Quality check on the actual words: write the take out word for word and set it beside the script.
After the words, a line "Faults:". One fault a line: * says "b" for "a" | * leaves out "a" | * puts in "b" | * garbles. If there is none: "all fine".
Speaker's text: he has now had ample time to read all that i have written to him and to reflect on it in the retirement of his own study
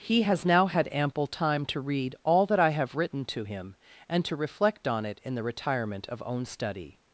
he has now had ample time to read all that i have written to him and to reflect on it in the retirement of own study
Faults:
* leaves out "his"